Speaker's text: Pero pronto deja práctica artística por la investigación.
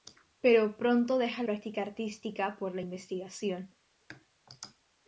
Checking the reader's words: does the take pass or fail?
pass